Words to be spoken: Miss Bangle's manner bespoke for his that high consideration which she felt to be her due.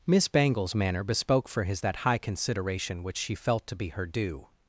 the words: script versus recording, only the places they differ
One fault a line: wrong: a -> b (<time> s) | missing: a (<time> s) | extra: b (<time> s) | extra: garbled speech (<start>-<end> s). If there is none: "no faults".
no faults